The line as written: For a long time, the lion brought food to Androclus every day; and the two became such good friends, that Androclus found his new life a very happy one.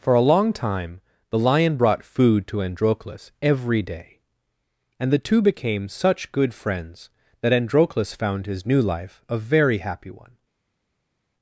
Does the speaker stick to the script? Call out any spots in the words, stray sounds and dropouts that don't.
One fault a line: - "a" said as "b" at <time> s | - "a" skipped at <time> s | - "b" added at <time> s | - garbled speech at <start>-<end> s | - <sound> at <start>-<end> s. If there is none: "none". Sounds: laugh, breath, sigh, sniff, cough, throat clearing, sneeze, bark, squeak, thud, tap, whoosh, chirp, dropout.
none